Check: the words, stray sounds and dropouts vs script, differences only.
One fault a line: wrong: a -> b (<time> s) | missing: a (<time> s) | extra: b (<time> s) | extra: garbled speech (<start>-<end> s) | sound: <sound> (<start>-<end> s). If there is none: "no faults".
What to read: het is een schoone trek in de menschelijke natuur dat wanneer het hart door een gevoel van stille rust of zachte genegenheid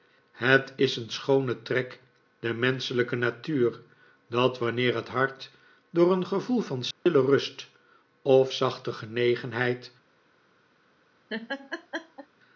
missing: in (2.0 s)
sound: dropout (6.9-7.1 s)
sound: laugh (11.3-12.3 s)